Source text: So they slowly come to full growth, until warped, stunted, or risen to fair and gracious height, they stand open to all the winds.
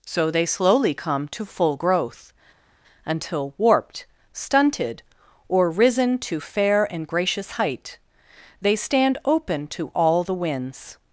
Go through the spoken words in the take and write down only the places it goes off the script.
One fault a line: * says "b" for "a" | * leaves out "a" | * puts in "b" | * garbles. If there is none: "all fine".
all fine